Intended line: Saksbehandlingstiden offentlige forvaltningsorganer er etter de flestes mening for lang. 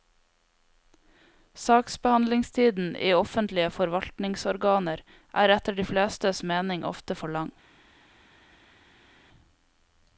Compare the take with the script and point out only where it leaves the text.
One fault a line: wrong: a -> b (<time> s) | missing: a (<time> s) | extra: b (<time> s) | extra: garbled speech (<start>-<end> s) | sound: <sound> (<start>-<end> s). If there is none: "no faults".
extra: i (3.0 s)
extra: ofte (6.9 s)